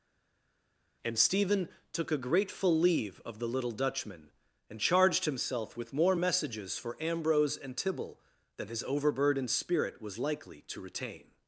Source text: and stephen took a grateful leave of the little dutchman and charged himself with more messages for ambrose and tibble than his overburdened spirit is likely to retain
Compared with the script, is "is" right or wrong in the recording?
wrong